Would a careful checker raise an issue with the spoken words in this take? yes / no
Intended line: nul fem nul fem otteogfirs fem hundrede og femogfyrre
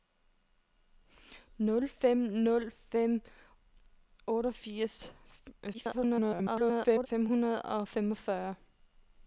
yes